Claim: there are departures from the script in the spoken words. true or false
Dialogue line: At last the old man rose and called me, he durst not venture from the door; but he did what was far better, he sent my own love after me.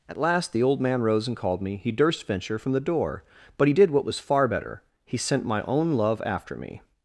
true